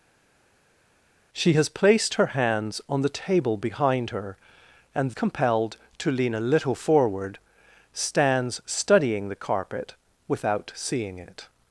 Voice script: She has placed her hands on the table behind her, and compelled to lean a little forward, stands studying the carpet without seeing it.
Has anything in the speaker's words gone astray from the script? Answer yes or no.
no